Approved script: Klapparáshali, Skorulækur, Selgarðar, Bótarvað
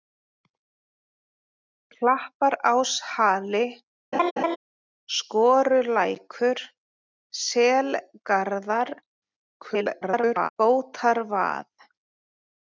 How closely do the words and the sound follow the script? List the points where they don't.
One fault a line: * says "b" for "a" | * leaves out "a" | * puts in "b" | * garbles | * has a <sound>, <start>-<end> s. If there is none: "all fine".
* has a laugh, 4.1-4.6 s
* garbles